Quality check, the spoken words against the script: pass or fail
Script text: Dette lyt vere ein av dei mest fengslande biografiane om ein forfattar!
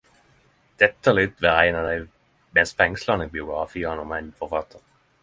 pass